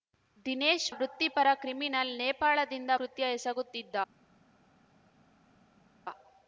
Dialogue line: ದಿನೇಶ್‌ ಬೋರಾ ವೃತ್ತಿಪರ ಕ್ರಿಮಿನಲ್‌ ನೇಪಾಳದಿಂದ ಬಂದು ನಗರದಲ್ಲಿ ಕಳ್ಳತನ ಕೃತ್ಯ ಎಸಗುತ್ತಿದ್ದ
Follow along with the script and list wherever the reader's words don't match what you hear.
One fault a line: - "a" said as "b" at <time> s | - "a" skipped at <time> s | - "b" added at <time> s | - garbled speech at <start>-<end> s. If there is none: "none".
- "ಬೋರಾ" skipped at 0.9 s
- "ಬಂದು ನಗರದಲ್ಲಿ ಕಳ್ಳತನ" skipped at 2.9 s